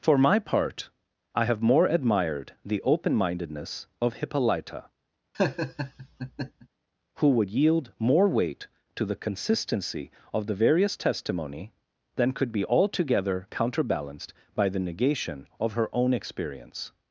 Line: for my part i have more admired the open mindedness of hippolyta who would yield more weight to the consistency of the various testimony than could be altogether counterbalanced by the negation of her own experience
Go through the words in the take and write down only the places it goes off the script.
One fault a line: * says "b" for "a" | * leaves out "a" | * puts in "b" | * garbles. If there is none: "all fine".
all fine